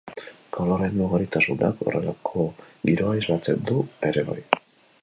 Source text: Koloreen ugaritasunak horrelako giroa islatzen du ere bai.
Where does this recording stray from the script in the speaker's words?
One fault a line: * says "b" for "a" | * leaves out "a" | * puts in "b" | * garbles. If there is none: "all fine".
all fine